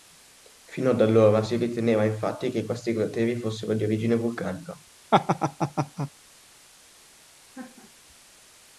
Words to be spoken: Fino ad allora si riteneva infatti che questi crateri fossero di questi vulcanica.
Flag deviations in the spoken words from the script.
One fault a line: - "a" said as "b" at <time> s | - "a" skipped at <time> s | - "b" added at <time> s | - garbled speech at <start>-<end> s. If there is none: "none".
- "questi" said as "origine" at 3.8 s